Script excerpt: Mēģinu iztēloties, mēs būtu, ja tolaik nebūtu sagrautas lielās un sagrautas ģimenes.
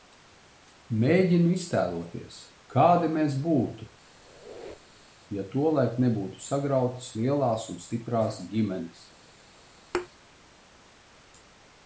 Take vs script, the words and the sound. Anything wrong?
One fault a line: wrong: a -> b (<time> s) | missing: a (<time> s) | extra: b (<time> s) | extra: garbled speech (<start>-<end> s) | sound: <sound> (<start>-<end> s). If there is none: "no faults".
extra: kādi (2.8 s)
sound: squeak (4.1-5.2 s)
wrong: sagrautas -> stiprās (7.9 s)
sound: thud (9.9-10.1 s)